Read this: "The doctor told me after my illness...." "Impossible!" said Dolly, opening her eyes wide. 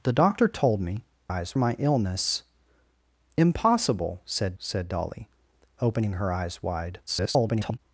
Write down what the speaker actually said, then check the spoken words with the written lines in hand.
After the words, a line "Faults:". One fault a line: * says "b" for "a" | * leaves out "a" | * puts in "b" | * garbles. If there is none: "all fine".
"The doctor told me eyes my illness...." "Impossible!" said said Dolly, opening her eyes wide. [garbled]
Faults:
* says "eyes" for "after"
* puts in "said"
* garbles